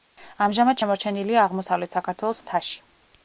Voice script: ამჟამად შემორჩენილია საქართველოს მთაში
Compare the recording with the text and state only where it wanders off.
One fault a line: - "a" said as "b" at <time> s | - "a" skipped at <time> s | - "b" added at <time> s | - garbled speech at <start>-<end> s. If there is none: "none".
- "აღმოსავლეთ" added at 1.5 s